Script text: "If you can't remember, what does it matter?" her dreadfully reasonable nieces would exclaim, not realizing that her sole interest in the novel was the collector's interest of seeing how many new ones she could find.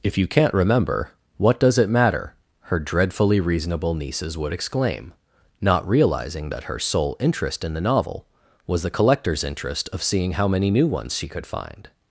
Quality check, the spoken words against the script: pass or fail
pass